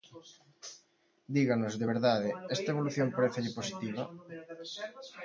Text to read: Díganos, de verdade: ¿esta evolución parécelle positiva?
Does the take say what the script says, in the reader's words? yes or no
yes